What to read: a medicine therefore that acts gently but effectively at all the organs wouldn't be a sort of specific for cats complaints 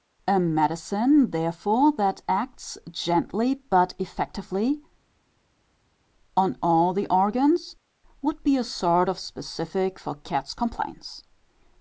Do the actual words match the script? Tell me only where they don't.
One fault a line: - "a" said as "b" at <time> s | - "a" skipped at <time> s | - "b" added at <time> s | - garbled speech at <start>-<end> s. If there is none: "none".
- "at" said as "on" at 6.3 s
- "wouldn't" said as "would" at 8.2 s